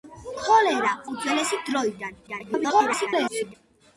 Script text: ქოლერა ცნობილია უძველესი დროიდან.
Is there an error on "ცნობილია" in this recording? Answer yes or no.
yes